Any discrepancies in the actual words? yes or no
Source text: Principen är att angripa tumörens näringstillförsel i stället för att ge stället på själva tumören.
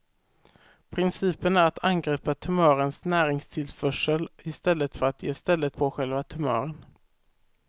no